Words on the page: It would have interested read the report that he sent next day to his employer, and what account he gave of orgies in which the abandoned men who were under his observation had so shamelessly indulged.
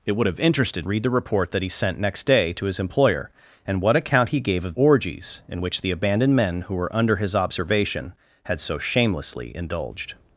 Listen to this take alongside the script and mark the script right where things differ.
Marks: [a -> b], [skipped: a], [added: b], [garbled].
It would have interested read the report that he sent next day to his employer, and what account he gave of orgies in which the abandoned men who were under his observation had so shamelessly indulged.